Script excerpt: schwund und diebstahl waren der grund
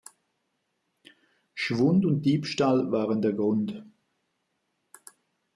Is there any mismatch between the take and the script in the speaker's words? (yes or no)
no